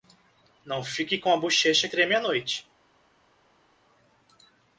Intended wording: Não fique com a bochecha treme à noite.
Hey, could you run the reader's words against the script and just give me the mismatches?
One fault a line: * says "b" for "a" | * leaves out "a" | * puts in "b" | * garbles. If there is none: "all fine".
all fine